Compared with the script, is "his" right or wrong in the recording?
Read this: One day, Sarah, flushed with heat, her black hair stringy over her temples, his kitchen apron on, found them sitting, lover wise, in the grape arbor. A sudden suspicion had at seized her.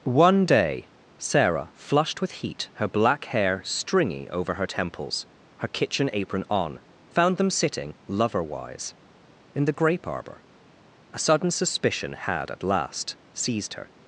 wrong